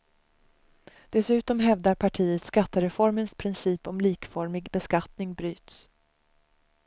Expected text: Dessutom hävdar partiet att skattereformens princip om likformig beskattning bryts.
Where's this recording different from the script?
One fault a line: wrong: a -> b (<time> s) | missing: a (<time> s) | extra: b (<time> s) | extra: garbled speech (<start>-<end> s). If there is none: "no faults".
missing: att (2.5 s)